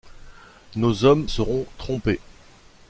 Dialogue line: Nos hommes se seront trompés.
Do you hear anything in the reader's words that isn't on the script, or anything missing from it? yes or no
yes